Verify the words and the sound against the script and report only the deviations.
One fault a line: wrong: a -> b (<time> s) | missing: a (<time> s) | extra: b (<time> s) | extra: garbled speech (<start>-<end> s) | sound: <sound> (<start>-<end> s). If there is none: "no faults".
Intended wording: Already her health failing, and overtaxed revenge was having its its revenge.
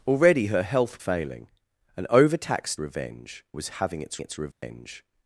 sound: dropout (4.5-4.6 s)